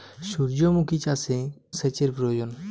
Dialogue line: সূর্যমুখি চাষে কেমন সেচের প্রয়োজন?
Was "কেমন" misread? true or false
true